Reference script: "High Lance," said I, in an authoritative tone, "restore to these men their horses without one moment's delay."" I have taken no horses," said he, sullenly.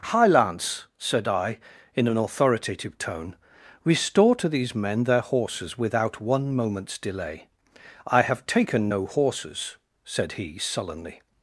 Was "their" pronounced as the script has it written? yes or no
yes